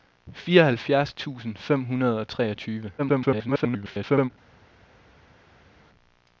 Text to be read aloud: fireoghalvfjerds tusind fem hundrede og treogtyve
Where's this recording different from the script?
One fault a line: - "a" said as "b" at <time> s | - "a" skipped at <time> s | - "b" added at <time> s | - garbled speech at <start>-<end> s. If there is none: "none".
- garbled speech at 3.0-4.3 s